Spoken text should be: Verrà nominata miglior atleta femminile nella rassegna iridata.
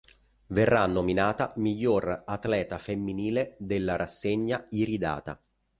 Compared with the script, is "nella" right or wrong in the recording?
wrong